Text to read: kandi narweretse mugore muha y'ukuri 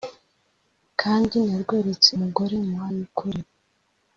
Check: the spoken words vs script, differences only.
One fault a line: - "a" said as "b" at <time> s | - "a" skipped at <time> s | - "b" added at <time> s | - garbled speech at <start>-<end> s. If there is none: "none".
none